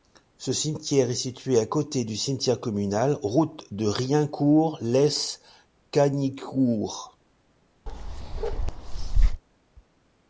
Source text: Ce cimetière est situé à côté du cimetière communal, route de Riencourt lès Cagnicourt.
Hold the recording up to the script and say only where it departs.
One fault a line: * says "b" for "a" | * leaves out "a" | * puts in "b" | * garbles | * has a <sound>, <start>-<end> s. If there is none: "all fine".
* has a bark, 7.9-9.4 s